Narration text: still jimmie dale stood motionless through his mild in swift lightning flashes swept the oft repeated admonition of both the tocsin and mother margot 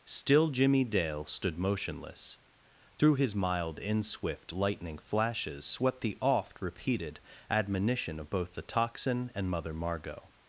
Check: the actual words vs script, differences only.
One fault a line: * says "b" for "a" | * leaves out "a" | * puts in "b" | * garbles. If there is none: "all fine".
all fine